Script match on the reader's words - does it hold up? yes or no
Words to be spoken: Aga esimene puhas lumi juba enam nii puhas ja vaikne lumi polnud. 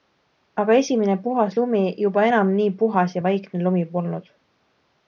yes